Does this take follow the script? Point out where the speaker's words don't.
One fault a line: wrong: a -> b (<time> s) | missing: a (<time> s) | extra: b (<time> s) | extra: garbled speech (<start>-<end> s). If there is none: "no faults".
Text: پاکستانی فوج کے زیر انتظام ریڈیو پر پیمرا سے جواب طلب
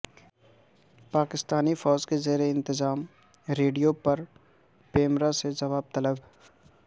no faults